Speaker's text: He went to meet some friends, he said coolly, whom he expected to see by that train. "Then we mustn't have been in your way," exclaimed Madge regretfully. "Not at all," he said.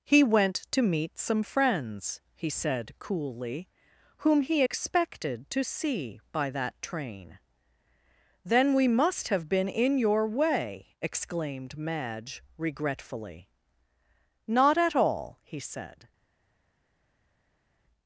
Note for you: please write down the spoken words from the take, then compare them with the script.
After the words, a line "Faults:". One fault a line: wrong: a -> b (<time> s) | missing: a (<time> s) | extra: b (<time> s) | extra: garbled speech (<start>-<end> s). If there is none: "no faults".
He went to meet some friends, he said coolly, whom he expected to see by that train. "Then we must have been in your way," exclaimed Madge regretfully. "Not at all," he said.
Faults:
wrong: mustn't -> must (8.9 s)